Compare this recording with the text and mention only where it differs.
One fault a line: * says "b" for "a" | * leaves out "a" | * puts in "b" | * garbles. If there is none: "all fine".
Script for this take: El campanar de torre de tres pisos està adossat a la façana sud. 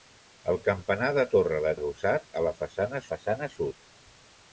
* leaves out "tres pisos està"
* puts in "façana"